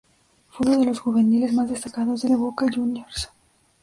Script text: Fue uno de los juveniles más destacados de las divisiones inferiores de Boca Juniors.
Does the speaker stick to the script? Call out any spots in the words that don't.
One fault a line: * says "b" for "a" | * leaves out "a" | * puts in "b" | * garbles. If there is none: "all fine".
* leaves out "las divisiones inferiores"